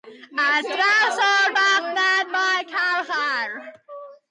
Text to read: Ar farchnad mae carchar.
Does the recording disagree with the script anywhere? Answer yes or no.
yes